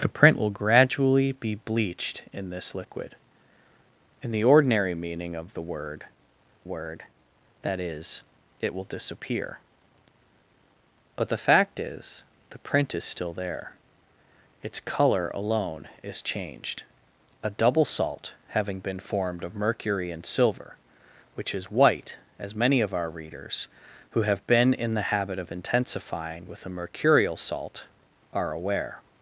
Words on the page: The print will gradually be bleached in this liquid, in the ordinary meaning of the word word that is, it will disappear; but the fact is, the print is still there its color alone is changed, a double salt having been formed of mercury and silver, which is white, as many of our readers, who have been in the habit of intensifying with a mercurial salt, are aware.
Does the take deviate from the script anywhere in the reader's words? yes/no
no